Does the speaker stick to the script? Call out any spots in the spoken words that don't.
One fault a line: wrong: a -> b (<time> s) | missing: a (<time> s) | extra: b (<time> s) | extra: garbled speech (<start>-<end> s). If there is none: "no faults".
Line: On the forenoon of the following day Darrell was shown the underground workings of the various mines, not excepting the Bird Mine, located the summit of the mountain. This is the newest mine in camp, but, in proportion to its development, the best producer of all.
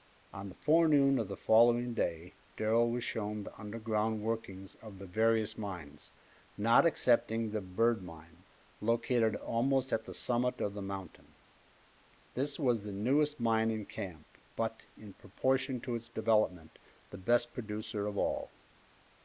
extra: almost at (9.3 s)
wrong: is -> was (12.6 s)